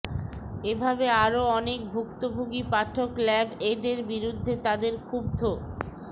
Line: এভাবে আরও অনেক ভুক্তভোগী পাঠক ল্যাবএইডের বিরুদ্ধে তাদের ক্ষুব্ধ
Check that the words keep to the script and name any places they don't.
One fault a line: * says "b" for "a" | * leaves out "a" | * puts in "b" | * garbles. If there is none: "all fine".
all fine